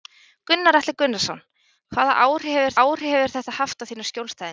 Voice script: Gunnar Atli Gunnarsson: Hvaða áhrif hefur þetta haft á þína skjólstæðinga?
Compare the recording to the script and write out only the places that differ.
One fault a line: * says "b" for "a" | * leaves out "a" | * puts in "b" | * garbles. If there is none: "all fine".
* puts in "áhrif hefur"